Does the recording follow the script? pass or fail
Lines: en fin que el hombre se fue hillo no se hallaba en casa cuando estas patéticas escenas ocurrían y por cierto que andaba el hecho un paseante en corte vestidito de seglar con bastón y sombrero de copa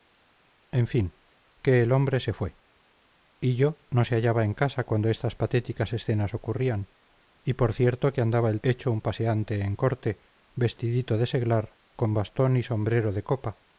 pass